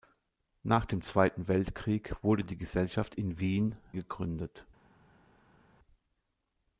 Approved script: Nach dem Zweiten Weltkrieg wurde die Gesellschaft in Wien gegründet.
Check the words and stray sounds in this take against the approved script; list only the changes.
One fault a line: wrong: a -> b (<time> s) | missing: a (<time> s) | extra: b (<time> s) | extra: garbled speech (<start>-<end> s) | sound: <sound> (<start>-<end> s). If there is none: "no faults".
no faults